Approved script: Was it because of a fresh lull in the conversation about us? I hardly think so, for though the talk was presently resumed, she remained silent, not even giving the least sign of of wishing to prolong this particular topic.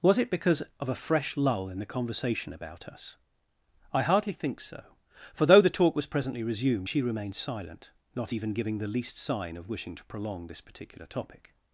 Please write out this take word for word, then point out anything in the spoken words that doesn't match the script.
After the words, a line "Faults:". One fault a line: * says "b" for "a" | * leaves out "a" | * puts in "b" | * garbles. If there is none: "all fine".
Was it because of a fresh lull in the conversation about us? I hardly think so, for though the talk was presently resumed, she remained silent, not even giving the least sign of wishing to prolong this particular topic.
Faults:
* leaves out "of"